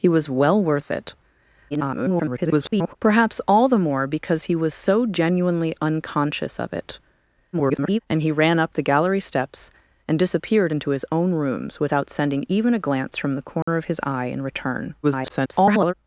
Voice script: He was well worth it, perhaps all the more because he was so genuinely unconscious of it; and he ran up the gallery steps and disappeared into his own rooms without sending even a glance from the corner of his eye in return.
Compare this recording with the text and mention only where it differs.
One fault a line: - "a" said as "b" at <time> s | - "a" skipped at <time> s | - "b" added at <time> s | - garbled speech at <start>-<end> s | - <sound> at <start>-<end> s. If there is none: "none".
- garbled speech at 1.7-3.0 s
- garbled speech at 7.5-8.0 s
- dropout at 13.6-13.7 s
- garbled speech at 15.0-15.9 s